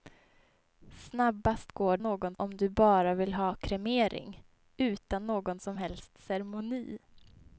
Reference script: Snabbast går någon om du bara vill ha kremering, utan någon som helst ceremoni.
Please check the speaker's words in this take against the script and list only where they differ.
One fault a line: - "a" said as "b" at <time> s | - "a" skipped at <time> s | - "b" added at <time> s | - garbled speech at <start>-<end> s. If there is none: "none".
none